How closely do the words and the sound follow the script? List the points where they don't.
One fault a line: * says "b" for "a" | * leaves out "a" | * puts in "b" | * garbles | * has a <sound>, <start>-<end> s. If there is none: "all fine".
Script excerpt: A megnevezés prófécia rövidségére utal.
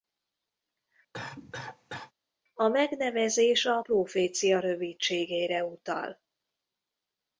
* has a cough, 1.1-2.1 s
* puts in "a"